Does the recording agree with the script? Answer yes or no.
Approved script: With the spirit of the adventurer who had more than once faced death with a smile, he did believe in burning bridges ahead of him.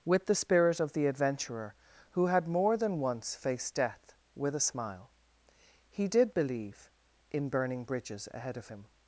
yes